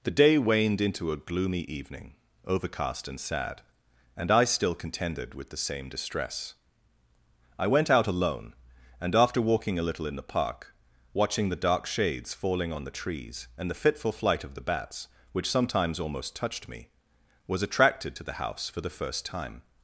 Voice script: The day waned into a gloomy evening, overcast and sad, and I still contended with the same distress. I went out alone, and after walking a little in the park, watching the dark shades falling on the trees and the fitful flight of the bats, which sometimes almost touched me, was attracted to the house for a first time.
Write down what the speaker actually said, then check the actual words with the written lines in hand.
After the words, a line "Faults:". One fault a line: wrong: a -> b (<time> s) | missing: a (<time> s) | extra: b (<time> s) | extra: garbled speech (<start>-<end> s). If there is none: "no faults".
The day waned into a gloomy evening, overcast and sad, and I still contended with the same distress. I went out alone, and after walking a little in the park, watching the dark shades falling on the trees and the fitful flight of the bats, which sometimes almost touched me, was attracted to the house for the first time.
Faults:
wrong: a -> the (18.8 s)